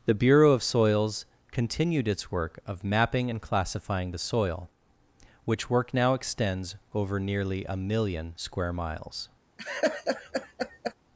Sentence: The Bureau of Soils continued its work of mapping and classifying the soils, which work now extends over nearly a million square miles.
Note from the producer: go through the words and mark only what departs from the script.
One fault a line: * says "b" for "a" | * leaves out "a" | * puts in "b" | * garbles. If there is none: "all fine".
* says "soil" for "soils"